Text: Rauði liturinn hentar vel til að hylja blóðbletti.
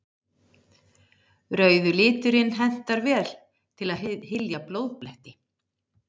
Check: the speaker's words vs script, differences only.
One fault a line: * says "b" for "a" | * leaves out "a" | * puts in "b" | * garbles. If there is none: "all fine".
all fine